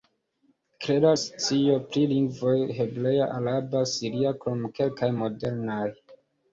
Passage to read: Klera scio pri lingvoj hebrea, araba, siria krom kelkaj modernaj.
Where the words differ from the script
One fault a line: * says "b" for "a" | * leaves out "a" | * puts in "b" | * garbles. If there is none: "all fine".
all fine